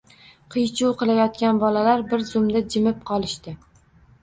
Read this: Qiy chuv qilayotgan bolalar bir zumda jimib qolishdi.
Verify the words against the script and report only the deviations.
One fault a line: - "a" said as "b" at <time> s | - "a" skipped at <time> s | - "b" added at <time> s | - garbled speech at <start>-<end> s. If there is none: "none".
none